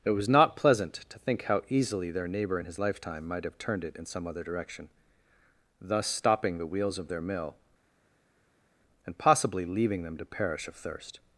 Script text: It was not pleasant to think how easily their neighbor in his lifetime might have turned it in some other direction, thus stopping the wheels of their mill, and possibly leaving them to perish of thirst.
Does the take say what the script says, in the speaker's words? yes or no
yes